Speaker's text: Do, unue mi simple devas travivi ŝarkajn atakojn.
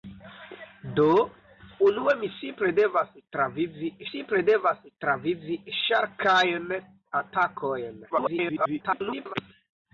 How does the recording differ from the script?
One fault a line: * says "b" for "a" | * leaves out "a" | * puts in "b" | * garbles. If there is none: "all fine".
* puts in "simple devas travivi"
* garbles